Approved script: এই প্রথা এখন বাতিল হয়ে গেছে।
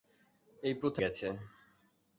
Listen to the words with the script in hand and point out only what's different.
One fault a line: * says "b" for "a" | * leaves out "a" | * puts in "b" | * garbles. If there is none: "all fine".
* leaves out "এখন বাতিল হয়ে"